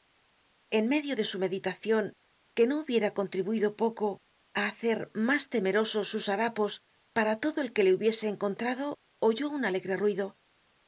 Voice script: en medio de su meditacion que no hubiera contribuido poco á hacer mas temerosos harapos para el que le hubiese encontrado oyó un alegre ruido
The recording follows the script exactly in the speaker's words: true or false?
false